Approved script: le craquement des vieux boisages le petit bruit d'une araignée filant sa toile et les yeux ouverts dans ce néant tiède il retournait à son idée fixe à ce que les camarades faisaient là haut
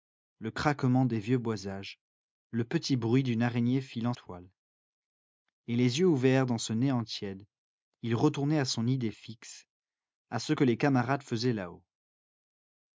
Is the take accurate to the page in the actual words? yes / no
no